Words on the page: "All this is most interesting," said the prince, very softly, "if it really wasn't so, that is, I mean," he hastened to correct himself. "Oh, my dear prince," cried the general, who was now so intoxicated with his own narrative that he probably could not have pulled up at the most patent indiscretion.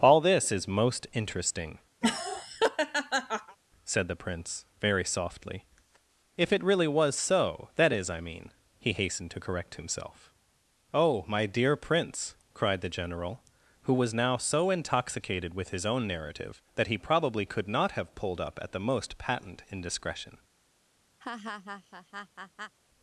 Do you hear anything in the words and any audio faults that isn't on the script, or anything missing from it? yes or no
yes